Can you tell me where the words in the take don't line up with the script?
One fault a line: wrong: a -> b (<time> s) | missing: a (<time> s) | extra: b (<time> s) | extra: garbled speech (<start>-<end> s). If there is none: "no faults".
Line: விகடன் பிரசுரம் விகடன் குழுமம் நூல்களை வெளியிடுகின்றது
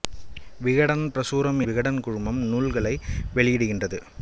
no faults